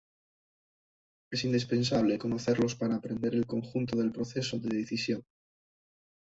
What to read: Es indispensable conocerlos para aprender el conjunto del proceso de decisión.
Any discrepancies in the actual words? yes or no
no